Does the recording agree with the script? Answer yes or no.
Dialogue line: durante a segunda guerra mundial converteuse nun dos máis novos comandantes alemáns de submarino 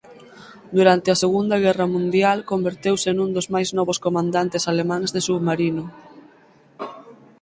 yes